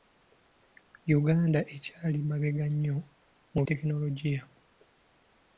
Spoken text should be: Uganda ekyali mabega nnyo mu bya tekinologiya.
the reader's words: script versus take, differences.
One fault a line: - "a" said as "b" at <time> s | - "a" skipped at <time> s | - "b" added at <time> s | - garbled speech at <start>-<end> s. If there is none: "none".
- "bya" skipped at 3.6 s